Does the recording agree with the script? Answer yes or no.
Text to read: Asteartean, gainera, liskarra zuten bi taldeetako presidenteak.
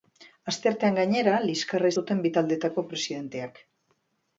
yes